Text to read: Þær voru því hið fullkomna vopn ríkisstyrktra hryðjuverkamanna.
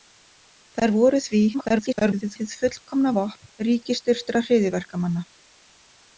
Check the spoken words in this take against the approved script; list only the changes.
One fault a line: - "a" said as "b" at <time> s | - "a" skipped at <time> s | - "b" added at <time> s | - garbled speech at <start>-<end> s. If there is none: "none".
- garbled speech at 1.5-2.4 s